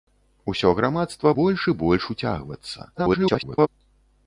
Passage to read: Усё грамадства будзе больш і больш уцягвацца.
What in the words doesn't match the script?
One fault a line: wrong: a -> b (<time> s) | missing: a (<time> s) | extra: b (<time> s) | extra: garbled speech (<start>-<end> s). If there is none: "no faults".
missing: будзе (1.3 s)
extra: garbled speech (2.9-3.7 s)